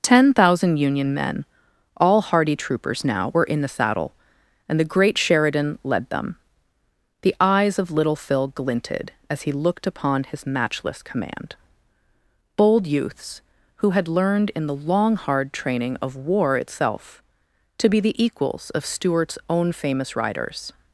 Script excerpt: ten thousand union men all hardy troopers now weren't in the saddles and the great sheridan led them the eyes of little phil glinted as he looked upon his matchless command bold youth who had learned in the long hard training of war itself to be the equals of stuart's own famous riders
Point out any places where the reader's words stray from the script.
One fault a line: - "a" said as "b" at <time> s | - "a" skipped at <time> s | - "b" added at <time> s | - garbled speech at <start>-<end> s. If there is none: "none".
- "weren't" said as "were" at 3.3 s
- "saddles" said as "saddle" at 3.7 s
- "youth" said as "youths" at 12.9 s